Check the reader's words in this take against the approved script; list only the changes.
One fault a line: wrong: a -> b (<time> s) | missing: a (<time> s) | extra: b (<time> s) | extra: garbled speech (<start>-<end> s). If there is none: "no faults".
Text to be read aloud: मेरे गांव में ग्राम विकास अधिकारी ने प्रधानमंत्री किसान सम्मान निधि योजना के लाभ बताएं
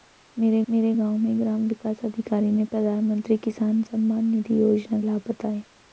extra: मेरे (0.7 s)
missing: के (5.0 s)